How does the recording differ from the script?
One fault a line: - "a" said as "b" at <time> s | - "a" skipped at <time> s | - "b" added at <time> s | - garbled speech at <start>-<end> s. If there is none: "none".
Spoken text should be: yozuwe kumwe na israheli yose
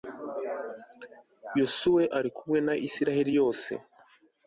- "ari" added at 2.2 s